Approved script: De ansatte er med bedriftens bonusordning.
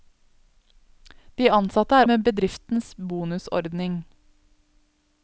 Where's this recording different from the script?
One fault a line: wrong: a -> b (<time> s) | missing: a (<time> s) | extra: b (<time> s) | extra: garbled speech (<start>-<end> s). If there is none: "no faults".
no faults